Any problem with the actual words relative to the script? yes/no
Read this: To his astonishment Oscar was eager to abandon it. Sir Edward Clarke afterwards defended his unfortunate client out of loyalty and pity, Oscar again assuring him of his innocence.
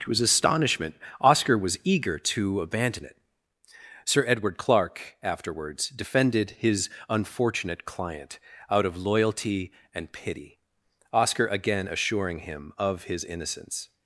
no